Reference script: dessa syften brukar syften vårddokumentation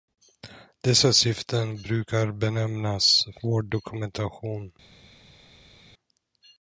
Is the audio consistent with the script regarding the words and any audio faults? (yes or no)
no